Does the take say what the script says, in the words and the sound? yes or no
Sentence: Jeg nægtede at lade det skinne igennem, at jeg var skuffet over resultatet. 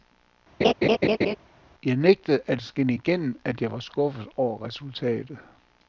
no